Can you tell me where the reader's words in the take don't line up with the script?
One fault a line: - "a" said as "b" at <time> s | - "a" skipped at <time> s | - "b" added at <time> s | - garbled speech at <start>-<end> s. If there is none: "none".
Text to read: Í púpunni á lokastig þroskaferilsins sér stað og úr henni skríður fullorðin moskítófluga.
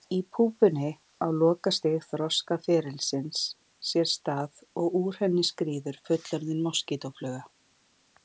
none